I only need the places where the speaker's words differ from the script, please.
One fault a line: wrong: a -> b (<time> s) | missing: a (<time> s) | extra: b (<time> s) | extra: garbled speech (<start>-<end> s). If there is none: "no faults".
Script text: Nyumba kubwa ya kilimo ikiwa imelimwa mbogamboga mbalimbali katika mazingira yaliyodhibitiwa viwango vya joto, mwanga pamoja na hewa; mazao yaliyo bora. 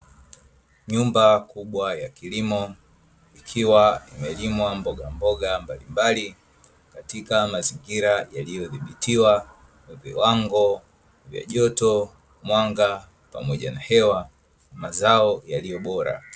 no faults